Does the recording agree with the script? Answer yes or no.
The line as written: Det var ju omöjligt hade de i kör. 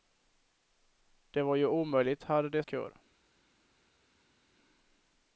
yes